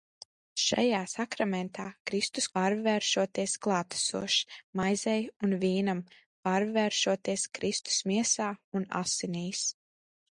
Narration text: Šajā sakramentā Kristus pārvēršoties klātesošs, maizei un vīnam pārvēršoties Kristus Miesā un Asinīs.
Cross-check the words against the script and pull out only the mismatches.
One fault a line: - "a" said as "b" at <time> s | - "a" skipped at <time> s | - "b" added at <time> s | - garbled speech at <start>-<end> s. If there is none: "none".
none